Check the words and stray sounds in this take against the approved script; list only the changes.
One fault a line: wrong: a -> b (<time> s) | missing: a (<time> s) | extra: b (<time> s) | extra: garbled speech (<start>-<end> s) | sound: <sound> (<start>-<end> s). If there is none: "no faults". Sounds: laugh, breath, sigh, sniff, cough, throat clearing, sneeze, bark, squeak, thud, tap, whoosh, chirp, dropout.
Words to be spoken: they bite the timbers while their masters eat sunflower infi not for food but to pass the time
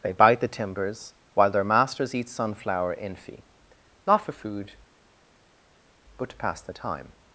no faults